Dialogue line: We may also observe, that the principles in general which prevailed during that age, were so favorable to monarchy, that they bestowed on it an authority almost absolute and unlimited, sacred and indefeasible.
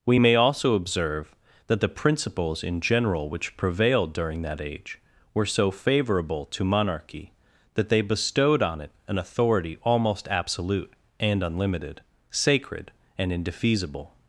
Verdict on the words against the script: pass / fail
pass